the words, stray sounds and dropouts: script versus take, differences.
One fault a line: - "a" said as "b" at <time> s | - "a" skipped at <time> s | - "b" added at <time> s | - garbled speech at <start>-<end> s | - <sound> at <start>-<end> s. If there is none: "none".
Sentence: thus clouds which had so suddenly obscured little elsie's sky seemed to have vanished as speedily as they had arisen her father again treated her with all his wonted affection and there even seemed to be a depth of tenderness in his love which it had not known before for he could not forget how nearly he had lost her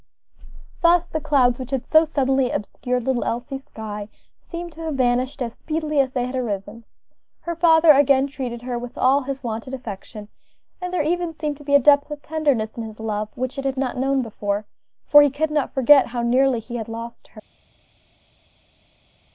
- "the" added at 1.1 s